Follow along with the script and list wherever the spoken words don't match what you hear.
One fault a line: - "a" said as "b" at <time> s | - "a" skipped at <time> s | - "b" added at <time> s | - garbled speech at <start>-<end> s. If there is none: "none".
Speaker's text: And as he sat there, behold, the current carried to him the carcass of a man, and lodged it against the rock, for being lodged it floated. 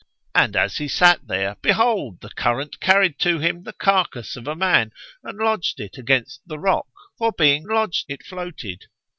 none